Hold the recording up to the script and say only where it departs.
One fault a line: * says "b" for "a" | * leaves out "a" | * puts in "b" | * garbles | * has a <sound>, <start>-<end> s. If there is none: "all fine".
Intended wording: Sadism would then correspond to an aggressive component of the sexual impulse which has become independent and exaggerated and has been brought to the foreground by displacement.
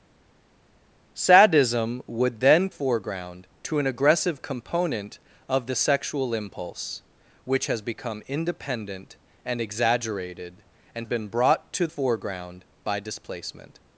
* says "foreground" for "correspond"
* leaves out "has"
* leaves out "the"